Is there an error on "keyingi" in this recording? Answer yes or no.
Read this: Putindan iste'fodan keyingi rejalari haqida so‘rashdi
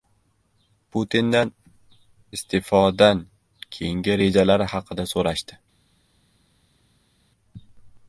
no